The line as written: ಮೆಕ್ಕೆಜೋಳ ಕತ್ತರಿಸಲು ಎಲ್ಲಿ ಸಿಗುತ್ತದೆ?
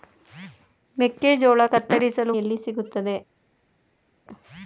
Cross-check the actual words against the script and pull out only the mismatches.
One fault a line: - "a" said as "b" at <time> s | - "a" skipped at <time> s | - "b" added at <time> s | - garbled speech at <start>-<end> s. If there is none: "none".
none